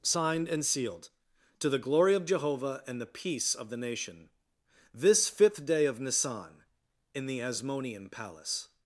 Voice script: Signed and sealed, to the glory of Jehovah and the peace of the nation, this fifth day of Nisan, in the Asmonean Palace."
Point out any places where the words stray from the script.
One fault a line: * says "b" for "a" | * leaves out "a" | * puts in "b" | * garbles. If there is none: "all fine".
all fine